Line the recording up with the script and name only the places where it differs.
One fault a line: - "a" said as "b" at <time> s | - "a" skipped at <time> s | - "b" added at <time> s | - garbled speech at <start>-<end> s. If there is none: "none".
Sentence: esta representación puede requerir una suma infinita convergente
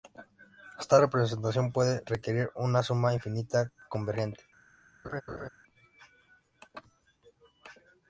none